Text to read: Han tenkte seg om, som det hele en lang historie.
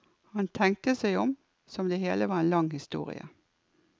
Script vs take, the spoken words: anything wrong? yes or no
yes